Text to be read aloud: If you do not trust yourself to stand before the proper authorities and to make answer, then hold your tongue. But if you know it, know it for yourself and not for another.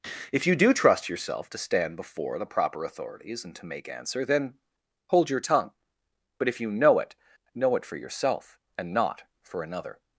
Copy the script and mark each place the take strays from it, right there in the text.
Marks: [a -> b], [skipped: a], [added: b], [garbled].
If you do [skipped: not] trust yourself to stand before the proper authorities and to make answer, then hold your tongue. But if you know it, know it for yourself and not for another.